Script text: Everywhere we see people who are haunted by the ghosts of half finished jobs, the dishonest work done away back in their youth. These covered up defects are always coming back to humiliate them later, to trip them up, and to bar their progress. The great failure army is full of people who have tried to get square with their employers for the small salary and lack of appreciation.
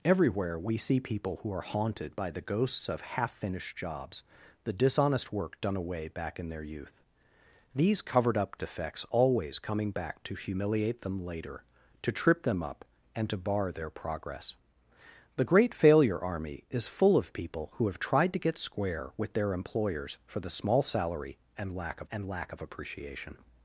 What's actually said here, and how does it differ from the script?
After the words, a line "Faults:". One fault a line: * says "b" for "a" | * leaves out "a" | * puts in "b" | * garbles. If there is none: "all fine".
Everywhere we see people who are haunted by the ghosts of half finished jobs, the dishonest work done away back in their youth. These covered up defects always coming back to humiliate them later, to trip them up, and to bar their progress. The great failure army is full of people who have tried to get square with their employers for the small salary and lack of and lack of appreciation.
Faults:
* leaves out "are"
* puts in "and lack of"